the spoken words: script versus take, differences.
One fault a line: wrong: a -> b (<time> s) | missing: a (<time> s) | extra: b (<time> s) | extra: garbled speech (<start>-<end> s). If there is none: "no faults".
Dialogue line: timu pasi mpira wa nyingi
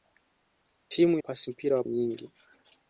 no faults